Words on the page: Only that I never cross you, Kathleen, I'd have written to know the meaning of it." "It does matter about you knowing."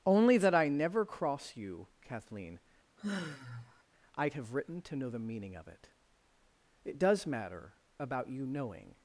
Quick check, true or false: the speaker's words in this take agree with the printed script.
true